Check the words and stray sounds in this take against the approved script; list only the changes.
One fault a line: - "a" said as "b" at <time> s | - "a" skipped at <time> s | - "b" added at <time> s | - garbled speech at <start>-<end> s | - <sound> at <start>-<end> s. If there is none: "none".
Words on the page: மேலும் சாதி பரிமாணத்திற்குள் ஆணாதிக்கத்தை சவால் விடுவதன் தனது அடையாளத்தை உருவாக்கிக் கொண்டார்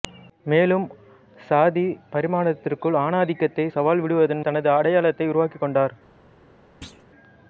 - thud at 6.8-7.0 s